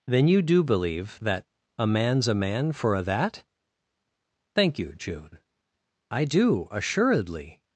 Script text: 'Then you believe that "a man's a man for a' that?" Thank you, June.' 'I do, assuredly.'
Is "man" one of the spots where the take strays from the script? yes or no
no